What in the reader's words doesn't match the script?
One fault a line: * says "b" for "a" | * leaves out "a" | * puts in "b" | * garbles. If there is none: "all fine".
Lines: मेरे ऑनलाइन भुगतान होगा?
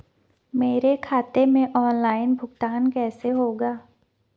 * puts in "खाते में"
* puts in "कैसे"